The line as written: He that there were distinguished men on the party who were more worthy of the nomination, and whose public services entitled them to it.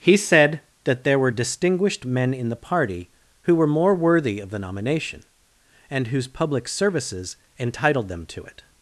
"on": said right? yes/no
no